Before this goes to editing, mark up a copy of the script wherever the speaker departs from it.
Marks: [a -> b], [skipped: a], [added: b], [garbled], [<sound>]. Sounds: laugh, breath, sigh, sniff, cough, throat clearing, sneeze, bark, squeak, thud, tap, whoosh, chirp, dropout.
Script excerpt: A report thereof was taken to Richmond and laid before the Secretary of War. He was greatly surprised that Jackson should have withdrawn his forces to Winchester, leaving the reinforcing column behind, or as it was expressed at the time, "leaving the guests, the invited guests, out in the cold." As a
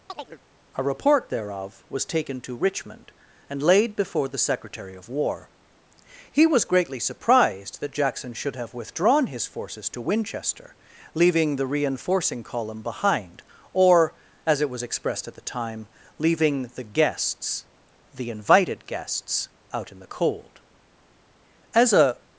[chirp] A report thereof was taken to Richmond and laid before the Secretary of War. He was greatly surprised that Jackson should have withdrawn his forces to Winchester, leaving the reinforcing column behind, or as it was expressed at the time, "leaving the guests, the invited guests, out in the cold." As a